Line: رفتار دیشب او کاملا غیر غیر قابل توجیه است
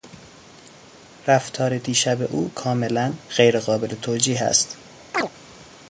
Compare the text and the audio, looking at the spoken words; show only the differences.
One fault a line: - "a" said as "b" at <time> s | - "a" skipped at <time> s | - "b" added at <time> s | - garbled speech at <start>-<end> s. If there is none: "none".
- "غیر" skipped at 3.6 s